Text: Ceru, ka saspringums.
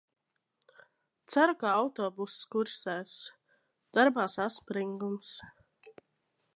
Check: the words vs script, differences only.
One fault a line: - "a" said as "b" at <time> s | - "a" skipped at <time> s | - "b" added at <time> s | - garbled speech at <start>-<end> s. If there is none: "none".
- "autobuss kursēs Darbā" added at 1.8 s